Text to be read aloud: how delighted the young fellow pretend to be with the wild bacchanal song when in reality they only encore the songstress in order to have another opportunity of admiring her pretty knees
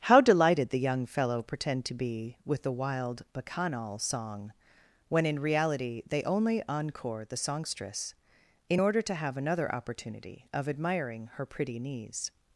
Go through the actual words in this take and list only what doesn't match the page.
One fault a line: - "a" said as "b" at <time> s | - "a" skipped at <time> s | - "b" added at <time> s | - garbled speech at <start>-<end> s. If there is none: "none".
none